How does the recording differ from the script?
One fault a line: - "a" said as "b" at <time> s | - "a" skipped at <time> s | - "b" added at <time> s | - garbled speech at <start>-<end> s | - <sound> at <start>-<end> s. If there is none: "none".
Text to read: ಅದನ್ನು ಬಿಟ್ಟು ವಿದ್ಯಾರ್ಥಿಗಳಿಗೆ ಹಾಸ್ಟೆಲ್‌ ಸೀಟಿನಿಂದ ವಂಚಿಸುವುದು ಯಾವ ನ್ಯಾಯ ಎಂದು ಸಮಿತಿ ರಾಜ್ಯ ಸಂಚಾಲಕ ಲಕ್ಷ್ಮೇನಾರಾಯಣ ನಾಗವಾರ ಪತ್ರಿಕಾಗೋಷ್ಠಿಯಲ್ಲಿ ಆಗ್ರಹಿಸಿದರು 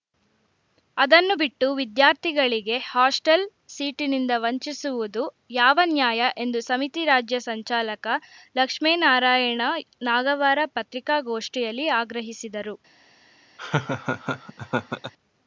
- laugh at 13.6-15.1 s